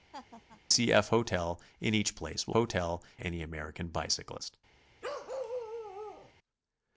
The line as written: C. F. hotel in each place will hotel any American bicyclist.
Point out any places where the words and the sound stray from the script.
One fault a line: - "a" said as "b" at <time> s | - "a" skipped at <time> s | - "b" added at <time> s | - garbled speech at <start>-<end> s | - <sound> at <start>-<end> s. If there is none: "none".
- laugh at 0.1-0.6 s
- bark at 5.0-6.3 s